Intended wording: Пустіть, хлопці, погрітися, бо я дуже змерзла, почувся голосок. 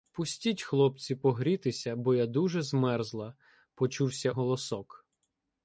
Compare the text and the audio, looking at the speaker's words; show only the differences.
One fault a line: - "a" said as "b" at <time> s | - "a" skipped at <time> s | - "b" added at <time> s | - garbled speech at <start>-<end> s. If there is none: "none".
none